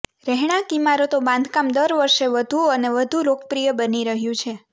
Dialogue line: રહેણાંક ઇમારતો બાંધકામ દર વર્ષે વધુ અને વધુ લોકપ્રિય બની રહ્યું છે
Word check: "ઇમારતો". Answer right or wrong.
right